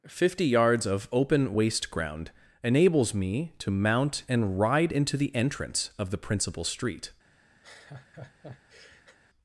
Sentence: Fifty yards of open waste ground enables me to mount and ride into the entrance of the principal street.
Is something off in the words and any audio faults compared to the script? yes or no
yes